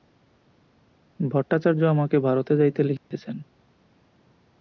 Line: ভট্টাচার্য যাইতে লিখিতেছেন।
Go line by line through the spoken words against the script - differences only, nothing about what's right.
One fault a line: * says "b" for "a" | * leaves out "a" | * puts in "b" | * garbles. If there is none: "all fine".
* puts in "আমাকে ভারতে"